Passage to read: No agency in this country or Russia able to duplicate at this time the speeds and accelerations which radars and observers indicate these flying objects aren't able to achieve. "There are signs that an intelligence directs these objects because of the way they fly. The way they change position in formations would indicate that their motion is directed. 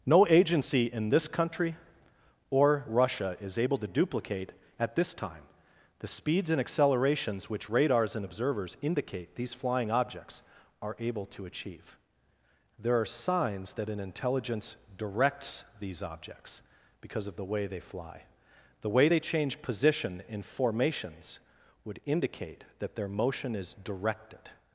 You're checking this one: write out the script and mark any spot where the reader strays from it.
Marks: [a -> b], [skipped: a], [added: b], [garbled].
No agency in this country or Russia [added: is] able to duplicate at this time the speeds and accelerations which radars and observers indicate these flying objects [aren't -> are] able to achieve. "There are signs that an intelligence directs these objects because of the way they fly. The way they change position in formations would indicate that their motion is directed.